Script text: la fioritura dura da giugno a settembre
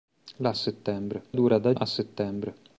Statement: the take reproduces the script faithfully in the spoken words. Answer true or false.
false